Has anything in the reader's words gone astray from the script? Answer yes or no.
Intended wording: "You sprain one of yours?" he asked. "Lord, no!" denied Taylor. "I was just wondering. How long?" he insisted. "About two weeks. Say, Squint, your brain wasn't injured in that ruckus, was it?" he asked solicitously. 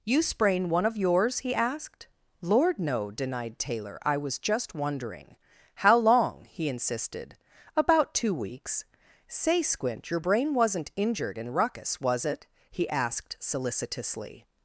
yes